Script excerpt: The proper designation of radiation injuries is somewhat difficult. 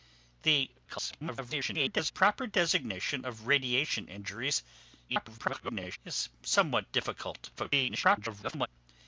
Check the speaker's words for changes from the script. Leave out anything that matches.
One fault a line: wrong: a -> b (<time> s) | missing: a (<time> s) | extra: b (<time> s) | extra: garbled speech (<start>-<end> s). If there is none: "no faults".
extra: garbled speech (0.8-2.1 s)
extra: garbled speech (5.1-6.0 s)
extra: garbled speech (7.6-8.7 s)